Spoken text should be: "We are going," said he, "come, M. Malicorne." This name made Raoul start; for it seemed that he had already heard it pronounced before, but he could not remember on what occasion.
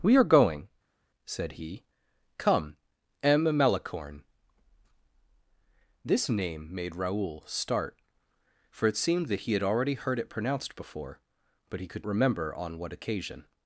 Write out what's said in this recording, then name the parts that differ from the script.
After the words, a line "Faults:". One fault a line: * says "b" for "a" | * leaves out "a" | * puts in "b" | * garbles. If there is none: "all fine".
"We are going," said he, "come, M. Malicorne." This name made Raoul start; for it seemed that he had already heard it pronounced before, but he could remember on what occasion.
Faults:
* leaves out "not"